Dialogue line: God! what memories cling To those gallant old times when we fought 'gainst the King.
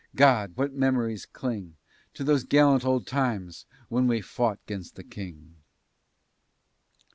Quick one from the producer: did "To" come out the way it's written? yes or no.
yes